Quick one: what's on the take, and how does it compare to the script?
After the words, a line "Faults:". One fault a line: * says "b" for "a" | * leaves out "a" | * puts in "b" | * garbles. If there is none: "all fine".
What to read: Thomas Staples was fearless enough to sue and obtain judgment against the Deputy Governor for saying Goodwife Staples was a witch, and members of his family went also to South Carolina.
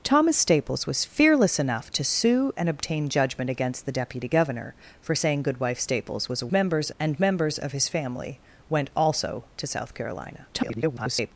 Thomas Staples was fearless enough to sue and obtain judgment against the Deputy Governor for saying Goodwife Staples was a members, and members of his family went also to South Carolina. [garbled]
Faults:
* says "members" for "witch"
* garbles